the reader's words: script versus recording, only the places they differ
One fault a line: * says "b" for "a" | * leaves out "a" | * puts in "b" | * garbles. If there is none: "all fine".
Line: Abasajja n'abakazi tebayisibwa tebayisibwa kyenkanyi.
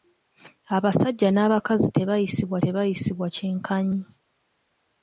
all fine